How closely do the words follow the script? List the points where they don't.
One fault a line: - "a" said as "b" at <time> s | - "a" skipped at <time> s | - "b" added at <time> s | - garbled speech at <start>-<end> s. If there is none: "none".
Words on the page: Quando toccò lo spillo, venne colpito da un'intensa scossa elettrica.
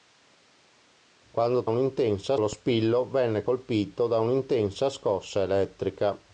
- "toccò" said as "un'intensa" at 1.6 s